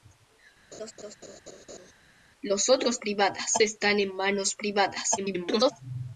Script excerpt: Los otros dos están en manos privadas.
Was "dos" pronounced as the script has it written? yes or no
no